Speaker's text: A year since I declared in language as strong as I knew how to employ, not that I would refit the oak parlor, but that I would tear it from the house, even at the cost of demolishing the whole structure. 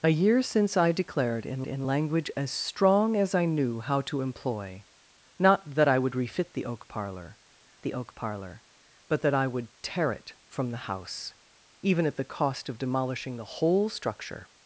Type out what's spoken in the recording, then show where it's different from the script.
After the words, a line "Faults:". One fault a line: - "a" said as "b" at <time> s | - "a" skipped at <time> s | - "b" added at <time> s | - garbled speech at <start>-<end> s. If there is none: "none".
A year since I declared in in language as strong as I knew how to employ, not that I would refit the oak parlor the oak parlor, but that I would tear it from the house, even at the cost of demolishing the whole structure.
Faults:
- "in" added at 1.7 s
- "the oak parlor" added at 7.8 s